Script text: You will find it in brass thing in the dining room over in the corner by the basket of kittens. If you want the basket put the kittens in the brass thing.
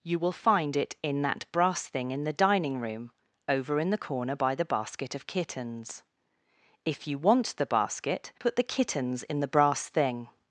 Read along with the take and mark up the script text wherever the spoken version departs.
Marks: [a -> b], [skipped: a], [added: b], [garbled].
You will find it in [added: that] brass thing in the dining room over in the corner by the basket of kittens. If you want the basket put the kittens in the brass thing.